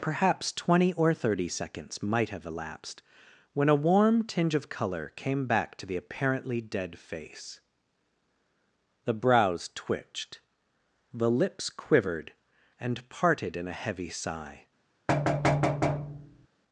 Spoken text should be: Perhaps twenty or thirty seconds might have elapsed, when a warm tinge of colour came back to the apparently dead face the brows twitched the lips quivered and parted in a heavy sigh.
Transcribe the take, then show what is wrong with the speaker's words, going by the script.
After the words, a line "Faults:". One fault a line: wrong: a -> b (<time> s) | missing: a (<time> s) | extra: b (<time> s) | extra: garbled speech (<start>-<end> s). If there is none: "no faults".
Perhaps twenty or thirty seconds might have elapsed, when a warm tinge of colour came back to the apparently dead face the brows twitched the lips quivered and parted in a heavy sigh.
Faults:
no faults